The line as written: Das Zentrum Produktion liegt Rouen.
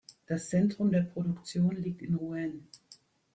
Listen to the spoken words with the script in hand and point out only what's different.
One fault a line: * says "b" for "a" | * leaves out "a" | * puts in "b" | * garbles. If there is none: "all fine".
* puts in "der"
* puts in "in"